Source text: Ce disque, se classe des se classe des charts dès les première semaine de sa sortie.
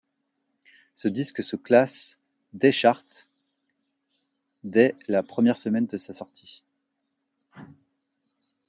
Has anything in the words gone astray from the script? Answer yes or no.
yes